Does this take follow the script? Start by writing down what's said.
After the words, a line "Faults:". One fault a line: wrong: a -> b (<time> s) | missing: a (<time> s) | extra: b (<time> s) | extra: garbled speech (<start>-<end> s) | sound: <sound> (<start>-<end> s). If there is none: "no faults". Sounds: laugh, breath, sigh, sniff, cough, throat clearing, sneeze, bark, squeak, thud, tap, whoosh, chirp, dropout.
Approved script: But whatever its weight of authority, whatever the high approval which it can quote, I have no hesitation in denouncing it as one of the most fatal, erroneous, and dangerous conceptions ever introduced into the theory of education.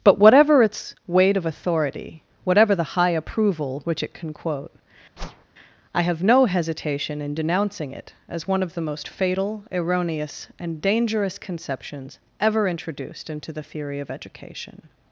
But whatever its weight of authority, whatever the high approval which it can quote, I have no hesitation in denouncing it as one of the most fatal, erroneous, and dangerous conceptions ever introduced into the theory of education.
Faults:
sound: whoosh (5.2-5.5 s)